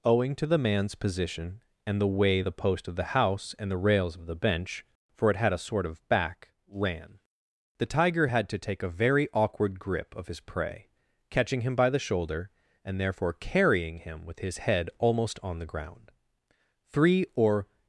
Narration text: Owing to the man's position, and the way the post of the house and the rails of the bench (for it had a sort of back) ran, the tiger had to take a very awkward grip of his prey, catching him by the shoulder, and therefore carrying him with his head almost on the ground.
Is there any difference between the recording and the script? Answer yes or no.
yes